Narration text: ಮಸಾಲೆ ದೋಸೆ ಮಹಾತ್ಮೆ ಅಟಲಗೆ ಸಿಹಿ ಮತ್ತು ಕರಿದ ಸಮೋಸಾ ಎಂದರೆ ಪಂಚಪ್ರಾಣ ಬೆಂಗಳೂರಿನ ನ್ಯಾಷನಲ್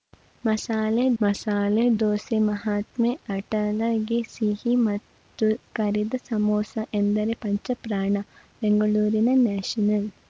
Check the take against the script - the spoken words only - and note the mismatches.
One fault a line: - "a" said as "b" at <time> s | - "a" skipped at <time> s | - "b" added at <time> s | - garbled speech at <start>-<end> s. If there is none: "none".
- "ಮಸಾಲೆ" added at 1.2 s